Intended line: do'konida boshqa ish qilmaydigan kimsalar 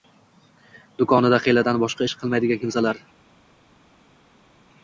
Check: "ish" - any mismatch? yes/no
no